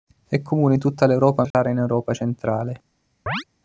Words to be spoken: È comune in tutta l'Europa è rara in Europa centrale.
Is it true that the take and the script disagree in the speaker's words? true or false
false